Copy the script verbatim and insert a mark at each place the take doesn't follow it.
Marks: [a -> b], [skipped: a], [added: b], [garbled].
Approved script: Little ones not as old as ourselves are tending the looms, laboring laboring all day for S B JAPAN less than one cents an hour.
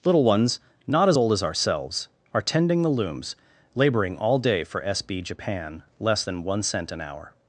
Little ones not as old as ourselves are tending the looms, laboring [skipped: laboring] all day for S B JAPAN less than one [cents -> cent] an hour.